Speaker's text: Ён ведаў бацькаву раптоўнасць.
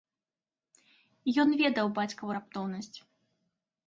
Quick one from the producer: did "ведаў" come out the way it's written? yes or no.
yes